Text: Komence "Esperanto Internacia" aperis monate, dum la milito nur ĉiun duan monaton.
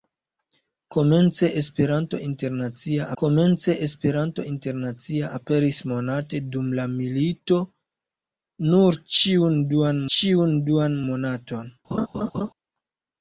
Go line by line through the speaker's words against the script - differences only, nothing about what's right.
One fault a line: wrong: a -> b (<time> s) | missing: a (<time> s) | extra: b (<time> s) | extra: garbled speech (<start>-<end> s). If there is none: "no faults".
extra: komence Esperanto Internacia (3.2 s)
extra: ĉiun duan (10.2 s)